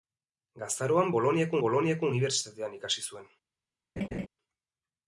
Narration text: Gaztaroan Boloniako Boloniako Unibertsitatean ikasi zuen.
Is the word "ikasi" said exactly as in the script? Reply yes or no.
yes